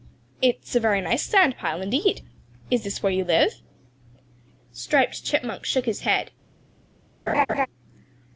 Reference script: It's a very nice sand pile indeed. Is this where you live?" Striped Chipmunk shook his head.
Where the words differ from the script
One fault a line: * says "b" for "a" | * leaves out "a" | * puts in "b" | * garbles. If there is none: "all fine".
all fine